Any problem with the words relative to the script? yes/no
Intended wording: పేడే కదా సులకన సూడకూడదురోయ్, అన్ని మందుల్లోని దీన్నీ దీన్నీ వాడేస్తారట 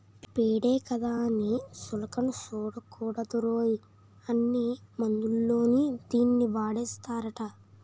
yes